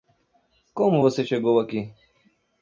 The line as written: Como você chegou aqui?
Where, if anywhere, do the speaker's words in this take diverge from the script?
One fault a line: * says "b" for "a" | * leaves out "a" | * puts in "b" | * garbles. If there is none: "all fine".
all fine